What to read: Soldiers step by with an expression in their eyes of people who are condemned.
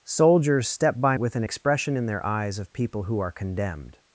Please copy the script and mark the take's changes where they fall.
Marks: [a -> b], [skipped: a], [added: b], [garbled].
Soldiers step by with an expression in their eyes of people who are condemned.